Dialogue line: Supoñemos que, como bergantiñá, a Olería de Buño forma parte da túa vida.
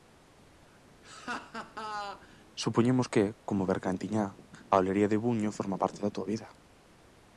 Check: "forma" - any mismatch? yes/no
no